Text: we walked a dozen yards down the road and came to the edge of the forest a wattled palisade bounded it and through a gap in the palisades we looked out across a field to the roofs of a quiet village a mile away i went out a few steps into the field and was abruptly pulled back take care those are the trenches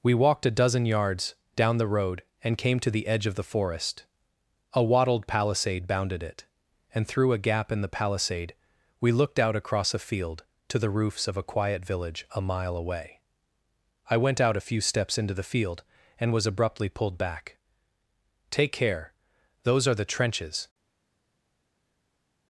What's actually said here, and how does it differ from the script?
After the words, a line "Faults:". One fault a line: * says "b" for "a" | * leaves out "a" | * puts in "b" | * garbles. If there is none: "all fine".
we walked a dozen yards down the road and came to the edge of the forest a wattled palisade bounded it and through a gap in the palisade we looked out across a field to the roofs of a quiet village a mile away i went out a few steps into the field and was abruptly pulled back take care those are the trenches
Faults:
* says "palisade" for "palisades"